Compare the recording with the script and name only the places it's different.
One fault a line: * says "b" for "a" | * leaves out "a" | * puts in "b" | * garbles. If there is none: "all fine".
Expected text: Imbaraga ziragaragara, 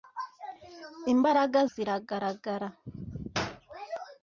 all fine